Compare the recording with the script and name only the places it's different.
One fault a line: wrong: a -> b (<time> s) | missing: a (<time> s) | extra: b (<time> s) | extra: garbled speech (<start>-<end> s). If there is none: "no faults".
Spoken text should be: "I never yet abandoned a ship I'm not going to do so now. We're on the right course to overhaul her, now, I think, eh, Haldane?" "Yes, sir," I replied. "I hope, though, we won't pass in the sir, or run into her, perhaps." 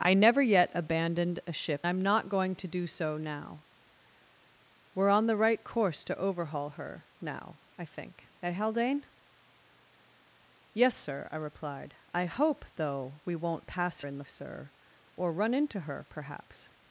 no faults